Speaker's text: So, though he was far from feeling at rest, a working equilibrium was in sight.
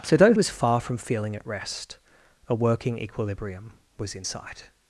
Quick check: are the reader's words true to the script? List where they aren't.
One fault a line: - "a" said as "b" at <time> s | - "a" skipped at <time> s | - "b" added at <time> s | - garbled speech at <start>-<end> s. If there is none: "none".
- "he" skipped at 0.3 s